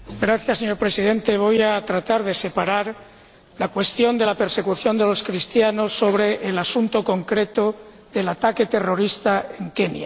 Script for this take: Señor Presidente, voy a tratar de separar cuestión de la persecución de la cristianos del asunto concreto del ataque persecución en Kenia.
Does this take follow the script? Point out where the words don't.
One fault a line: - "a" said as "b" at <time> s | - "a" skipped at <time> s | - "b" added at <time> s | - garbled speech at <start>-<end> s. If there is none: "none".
- "la" added at 3.6 s
- "la" said as "los" at 5.0 s
- "persecución" said as "terrorista" at 8.7 s